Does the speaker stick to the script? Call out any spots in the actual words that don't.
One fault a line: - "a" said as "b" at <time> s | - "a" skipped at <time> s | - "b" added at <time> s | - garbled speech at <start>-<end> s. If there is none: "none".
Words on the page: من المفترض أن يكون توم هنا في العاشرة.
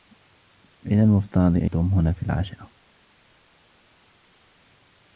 - "يكون" skipped at 1.7 s